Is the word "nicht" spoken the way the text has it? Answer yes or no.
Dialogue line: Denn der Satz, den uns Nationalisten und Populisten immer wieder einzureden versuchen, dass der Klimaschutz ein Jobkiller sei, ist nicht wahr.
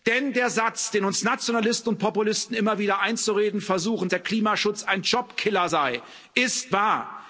no